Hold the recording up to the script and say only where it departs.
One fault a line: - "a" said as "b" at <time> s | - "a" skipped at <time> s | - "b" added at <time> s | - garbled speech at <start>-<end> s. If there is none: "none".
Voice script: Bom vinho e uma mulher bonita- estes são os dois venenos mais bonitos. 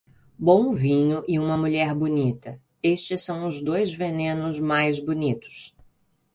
none